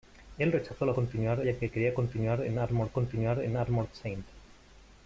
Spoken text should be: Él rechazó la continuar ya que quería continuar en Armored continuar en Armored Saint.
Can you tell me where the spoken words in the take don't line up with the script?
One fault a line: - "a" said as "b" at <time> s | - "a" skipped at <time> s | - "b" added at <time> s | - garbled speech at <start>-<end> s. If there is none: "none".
none